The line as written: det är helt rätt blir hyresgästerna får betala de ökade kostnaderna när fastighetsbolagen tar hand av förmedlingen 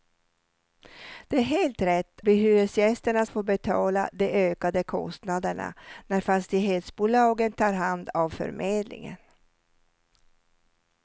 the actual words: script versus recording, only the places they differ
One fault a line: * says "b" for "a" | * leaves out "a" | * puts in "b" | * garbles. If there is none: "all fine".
all fine